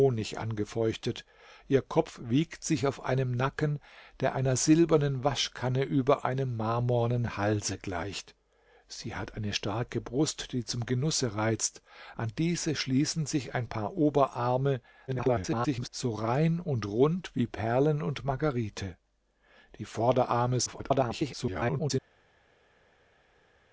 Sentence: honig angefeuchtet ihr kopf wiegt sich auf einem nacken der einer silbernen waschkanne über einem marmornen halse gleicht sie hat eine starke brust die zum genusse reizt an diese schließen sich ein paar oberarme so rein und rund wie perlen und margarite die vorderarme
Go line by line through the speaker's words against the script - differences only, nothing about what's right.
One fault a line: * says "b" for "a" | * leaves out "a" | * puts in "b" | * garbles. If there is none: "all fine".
* garbles
* garbles